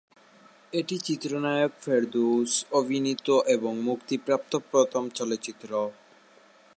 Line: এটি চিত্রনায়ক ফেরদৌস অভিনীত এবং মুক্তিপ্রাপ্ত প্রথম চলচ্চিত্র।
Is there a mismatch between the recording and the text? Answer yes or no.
no